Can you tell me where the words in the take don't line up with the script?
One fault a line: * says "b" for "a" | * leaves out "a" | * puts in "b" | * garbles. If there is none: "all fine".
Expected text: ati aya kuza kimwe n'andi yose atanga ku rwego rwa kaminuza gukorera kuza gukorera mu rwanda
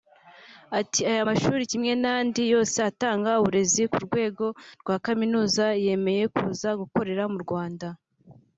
* says "mashuri" for "kuza"
* puts in "uburezi"
* says "yemeye" for "gukorera"